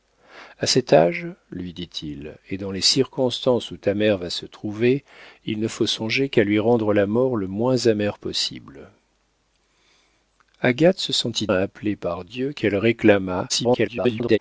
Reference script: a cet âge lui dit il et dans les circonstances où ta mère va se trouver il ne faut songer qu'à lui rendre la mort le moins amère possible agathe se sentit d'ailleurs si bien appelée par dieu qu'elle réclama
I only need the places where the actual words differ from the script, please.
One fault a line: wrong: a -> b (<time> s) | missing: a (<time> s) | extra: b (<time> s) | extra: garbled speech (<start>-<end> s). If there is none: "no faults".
missing: d'ailleurs si bien (11.5 s)
extra: garbled speech (13.5-14.4 s)